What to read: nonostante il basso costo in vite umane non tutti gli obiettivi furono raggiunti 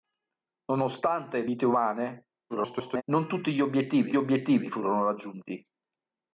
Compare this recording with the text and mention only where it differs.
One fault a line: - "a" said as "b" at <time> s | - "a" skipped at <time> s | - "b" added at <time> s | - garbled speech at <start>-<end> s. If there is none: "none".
- "basso costo in" skipped at 1.5 s
- garbled speech at 2.5-3.0 s
- "obiettivi" added at 4.2 s